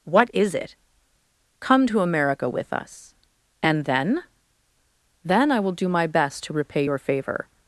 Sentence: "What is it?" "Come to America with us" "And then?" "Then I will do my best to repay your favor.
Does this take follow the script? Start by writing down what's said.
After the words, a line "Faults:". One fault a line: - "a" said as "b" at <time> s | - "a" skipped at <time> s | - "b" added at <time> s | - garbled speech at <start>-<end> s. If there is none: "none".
"What is it?" "Come to America with us" "And then?" "Then I will do my best to repay your favor.
Faults:
none